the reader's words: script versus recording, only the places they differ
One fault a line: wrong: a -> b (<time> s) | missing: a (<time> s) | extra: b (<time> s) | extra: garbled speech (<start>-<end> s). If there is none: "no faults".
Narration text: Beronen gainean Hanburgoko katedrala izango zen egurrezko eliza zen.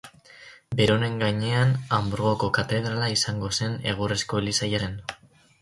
no faults